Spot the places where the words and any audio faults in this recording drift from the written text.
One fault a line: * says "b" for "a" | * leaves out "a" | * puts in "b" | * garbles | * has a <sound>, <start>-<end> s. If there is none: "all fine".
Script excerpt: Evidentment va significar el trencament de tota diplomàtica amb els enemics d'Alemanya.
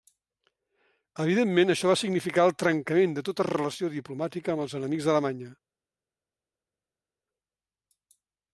* puts in "això"
* puts in "relació"